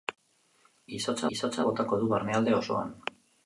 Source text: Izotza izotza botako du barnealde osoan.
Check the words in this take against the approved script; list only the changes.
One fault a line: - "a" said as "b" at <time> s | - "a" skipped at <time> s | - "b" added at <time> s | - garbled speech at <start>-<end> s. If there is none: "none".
none